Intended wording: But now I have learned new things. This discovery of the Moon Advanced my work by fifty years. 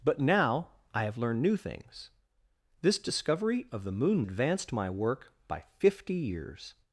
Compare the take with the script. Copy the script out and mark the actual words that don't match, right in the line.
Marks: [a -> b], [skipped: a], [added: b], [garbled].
But now I have learned new things. This discovery of the Moon Advanced my work by fifty years.